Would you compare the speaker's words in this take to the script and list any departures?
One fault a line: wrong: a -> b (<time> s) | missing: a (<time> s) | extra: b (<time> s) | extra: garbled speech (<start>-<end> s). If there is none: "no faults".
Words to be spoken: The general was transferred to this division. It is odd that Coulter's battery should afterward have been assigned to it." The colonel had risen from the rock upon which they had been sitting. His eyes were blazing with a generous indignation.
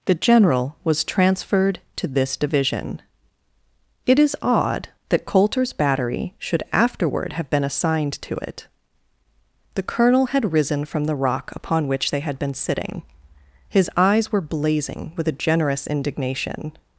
no faults